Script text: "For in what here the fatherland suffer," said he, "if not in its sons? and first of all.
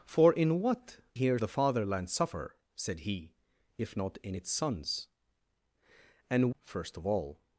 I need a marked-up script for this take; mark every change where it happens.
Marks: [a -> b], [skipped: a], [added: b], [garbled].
"For in what here the fatherland suffer," said he, "if not in its sons? and first of all.